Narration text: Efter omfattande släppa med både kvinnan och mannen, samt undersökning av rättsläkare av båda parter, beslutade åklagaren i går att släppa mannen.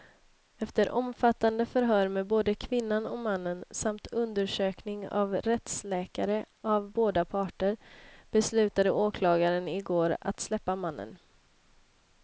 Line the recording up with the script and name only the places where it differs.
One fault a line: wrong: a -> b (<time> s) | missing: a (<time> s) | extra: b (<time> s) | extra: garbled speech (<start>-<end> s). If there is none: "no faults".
wrong: släppa -> förhör (1.6 s)